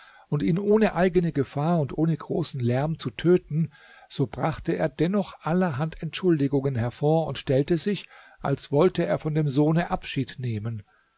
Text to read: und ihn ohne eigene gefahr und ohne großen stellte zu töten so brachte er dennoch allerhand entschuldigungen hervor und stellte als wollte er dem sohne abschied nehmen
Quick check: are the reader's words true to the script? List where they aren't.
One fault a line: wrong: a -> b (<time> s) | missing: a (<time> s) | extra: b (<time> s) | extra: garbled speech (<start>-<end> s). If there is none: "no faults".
wrong: stellte -> lärm (2.6 s)
extra: sich (7.8 s)
extra: von (9.2 s)